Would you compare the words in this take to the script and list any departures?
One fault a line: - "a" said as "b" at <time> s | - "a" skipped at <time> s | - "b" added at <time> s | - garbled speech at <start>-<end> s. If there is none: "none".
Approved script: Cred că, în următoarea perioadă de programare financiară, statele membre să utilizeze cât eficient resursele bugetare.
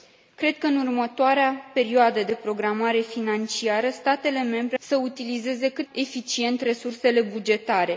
none